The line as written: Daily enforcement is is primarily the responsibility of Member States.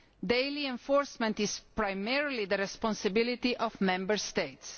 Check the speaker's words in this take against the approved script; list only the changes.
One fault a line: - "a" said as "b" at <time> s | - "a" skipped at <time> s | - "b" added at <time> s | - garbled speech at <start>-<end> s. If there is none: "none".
- "is" skipped at 1.6 s